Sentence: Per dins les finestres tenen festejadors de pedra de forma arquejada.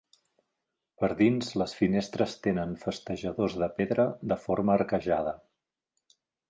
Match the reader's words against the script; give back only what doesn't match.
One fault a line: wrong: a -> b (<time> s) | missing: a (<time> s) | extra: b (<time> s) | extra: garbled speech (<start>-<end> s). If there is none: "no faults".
no faults